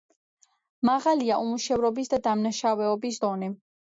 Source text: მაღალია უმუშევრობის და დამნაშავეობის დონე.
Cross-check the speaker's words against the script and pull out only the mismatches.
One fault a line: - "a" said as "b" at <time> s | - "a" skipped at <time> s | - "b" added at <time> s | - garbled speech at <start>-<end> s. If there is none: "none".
none